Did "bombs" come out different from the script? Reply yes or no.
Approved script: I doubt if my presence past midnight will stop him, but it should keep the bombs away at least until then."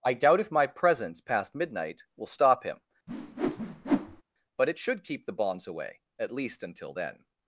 yes